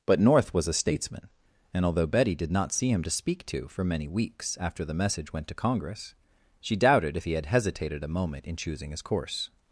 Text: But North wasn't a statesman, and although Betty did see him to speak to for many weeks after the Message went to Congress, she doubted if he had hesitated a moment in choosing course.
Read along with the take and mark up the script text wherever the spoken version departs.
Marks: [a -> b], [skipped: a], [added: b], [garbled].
But North [wasn't -> was] a statesman, and although Betty did [added: not] see him to speak to for many weeks after the Message went to Congress, she doubted if he had hesitated a moment in choosing [added: his] course.